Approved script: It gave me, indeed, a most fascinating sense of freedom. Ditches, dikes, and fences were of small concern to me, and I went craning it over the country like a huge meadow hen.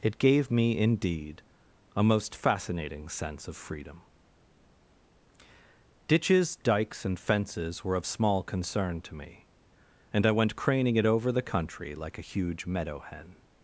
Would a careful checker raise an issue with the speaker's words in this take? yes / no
no